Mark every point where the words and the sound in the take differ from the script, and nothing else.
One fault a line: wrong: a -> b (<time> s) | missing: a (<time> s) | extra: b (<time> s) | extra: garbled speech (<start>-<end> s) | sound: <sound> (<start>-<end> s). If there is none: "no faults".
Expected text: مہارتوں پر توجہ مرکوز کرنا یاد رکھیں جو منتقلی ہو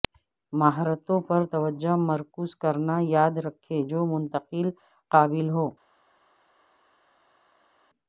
extra: قابل (5.1 s)